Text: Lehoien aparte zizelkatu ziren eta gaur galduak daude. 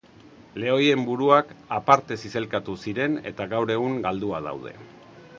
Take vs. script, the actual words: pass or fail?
fail